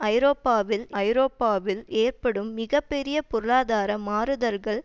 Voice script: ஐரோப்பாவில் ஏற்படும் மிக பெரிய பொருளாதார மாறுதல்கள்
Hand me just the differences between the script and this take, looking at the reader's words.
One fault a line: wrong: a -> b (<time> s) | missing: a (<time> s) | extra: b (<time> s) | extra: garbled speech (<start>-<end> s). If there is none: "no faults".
extra: ஐரோப்பாவில் (1.0 s)